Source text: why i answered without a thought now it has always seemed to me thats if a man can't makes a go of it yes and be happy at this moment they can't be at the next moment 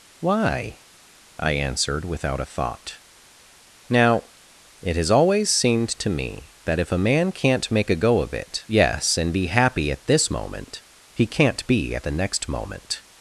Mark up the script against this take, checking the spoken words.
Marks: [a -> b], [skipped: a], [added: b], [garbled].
why i answered without a thought now it has always seemed to me [thats -> that] if a man can't [makes -> make] a go of it yes and be happy at this moment [they -> he] can't be at the next moment